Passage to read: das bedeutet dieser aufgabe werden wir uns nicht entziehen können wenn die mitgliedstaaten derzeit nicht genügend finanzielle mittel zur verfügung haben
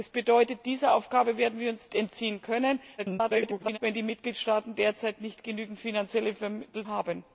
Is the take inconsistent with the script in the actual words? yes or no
yes